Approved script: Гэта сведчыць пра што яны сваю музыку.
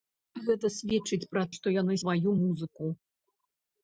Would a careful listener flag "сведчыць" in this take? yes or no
no